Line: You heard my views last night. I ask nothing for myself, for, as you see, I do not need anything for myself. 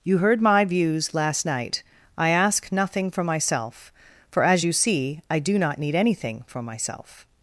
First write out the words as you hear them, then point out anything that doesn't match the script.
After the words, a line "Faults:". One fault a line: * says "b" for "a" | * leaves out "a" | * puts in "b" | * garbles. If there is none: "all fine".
You heard my views last night. I ask nothing for myself, for, as you see, I do not need anything for myself.
Faults:
all fine